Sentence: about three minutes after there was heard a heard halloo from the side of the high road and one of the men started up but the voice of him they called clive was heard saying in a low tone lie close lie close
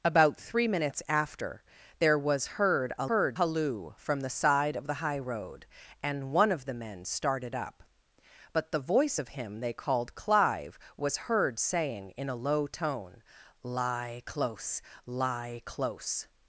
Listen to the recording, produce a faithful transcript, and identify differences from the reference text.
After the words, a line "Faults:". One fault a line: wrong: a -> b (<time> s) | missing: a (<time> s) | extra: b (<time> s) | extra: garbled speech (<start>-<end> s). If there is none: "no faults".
about three minutes after there was heard a heard halloo from the side of the high road and one of the men started up but the voice of him they called clive was heard saying in a low tone lie close lie close
Faults:
no faults